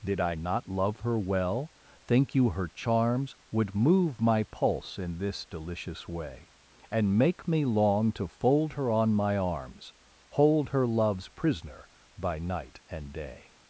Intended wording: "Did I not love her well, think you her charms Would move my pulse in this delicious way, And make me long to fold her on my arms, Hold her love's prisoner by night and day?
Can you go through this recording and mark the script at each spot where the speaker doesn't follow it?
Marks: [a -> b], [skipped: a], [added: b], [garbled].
"Did I not love her well, think you her charms Would move my pulse in this delicious way, And make me long to fold her on my arms, Hold her love's prisoner by night and day?